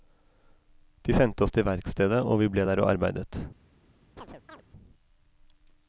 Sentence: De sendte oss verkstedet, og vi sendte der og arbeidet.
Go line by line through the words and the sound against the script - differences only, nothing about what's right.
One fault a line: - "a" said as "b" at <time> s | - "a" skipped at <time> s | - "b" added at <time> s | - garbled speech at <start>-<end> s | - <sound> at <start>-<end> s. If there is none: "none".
- "til" added at 1.5 s
- "sendte" said as "ble" at 2.5 s
- chirp at 4.2-4.6 s